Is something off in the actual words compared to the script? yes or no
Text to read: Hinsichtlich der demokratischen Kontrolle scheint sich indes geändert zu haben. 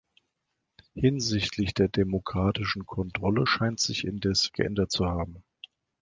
no